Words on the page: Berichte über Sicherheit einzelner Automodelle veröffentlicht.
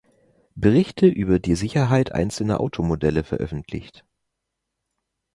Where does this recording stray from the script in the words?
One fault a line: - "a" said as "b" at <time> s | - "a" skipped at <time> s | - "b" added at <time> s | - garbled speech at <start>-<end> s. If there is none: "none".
- "die" added at 1.4 s